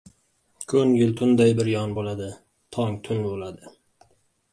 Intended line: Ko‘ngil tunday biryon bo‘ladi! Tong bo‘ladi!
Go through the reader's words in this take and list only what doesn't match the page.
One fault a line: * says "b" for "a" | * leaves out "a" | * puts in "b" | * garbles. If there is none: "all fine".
* puts in "tun"